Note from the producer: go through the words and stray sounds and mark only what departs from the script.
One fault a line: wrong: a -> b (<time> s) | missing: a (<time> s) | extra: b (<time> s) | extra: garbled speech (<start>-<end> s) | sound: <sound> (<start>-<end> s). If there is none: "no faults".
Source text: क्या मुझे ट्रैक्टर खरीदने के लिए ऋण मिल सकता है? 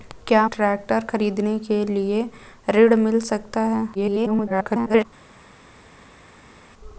missing: मुझे (0.5 s)
extra: garbled speech (3.9-5.1 s)